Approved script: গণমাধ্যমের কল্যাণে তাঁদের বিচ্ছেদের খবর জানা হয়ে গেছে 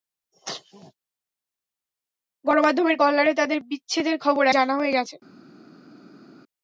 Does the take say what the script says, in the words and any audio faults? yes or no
yes